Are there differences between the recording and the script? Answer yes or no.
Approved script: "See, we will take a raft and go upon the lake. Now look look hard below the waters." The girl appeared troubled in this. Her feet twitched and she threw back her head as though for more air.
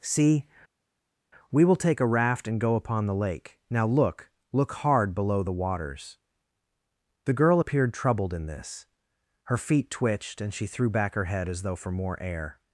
no